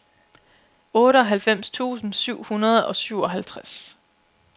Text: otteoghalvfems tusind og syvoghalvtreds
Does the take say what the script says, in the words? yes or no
no